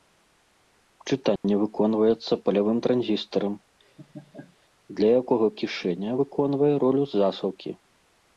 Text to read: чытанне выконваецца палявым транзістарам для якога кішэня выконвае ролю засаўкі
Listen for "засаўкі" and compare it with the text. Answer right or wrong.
right